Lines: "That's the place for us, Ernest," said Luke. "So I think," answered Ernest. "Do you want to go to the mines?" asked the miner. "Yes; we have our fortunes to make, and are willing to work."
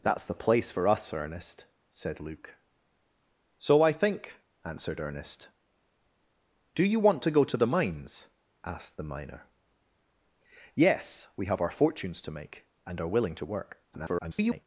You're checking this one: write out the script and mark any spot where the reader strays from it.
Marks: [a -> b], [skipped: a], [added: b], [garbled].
"That's the place for us, Ernest," said Luke. "So I think," answered Ernest. "Do you want to go to the mines?" asked the miner. "Yes; we have our fortunes to make, and are willing to work." [garbled]